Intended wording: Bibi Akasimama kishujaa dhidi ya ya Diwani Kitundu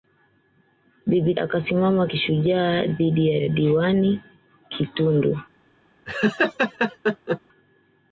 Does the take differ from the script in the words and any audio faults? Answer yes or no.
yes